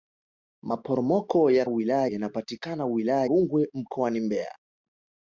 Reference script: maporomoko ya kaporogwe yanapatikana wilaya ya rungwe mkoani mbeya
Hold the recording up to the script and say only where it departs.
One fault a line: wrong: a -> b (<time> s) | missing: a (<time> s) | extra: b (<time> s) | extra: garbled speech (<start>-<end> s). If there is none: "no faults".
wrong: kaporogwe -> wilaya (1.7 s)
missing: ya (3.3 s)